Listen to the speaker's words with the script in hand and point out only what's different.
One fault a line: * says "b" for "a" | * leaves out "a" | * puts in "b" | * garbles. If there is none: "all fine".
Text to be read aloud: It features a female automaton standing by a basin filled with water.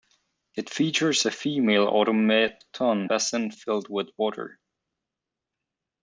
* leaves out "standing by a"